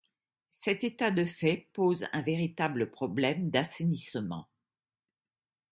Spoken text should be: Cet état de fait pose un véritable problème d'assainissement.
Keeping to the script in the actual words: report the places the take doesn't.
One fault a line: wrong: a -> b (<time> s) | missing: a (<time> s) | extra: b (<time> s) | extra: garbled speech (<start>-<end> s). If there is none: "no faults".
no faults